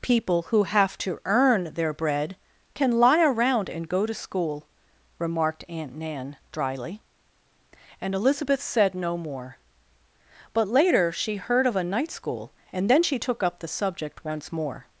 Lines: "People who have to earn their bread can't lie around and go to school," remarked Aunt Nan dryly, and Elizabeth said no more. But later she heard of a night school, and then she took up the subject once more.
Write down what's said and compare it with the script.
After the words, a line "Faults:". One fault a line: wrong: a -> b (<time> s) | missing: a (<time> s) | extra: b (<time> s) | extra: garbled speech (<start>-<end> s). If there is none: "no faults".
"People who have to earn their bread can lie around and go to school," remarked Aunt Nan dryly, and Elizabeth said no more. But later she heard of a night school, and then she took up the subject once more.
Faults:
wrong: can't -> can (2.7 s)